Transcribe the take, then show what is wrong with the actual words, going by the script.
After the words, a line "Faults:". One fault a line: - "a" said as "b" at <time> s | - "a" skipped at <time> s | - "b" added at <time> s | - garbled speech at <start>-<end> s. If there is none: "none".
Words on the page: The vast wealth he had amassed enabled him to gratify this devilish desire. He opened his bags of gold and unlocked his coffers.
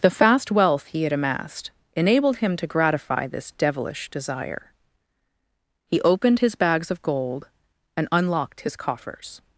The fast wealth he had amassed enabled him to gratify this devilish desire. He opened his bags of gold and unlocked his coffers.
Faults:
- "vast" said as "fast" at 0.1 s